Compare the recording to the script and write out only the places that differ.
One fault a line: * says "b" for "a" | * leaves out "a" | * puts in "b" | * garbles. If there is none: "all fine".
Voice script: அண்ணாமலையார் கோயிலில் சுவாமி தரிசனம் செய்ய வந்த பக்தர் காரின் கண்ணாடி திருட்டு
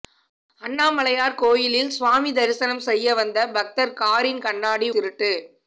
all fine